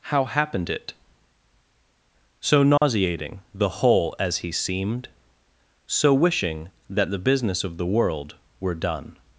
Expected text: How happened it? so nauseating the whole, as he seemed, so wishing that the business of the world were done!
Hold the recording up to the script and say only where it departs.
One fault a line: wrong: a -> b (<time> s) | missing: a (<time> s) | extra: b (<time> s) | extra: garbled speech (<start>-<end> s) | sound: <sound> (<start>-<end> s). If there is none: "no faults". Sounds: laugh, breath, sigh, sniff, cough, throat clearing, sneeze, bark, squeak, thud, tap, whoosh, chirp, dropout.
sound: dropout (2.8-2.8 s)